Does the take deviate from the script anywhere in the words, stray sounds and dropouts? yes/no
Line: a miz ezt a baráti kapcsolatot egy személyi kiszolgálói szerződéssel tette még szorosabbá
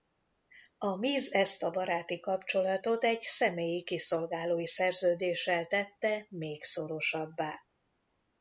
no